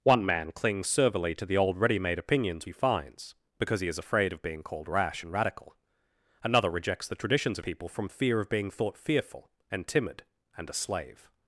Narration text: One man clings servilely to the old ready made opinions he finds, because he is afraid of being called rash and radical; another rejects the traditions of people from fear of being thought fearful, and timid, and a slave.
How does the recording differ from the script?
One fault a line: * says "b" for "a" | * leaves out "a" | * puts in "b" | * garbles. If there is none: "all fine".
all fine